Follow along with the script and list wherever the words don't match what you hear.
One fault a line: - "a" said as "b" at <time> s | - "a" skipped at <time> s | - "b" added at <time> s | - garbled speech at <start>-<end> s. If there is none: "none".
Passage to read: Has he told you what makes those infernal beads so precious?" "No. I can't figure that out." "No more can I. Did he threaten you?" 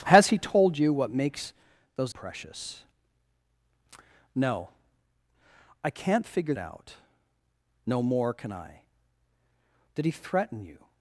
- "infernal beads so" skipped at 2.1 s
- "that" skipped at 6.6 s